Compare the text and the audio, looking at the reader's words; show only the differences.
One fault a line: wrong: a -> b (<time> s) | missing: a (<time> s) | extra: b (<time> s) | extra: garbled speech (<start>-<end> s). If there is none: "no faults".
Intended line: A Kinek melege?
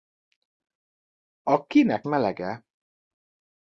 no faults